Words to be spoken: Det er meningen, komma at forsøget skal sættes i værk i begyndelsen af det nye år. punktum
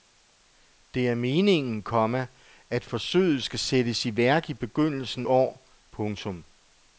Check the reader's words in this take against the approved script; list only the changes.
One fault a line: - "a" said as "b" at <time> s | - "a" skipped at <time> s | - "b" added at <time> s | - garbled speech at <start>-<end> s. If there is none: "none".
- "af det nye" skipped at 5.3 s